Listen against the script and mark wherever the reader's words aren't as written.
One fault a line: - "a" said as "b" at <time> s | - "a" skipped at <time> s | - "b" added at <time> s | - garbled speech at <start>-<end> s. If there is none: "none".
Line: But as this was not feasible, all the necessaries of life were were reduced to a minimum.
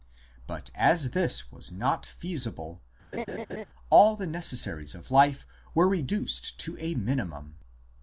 - "were" skipped at 5.9 s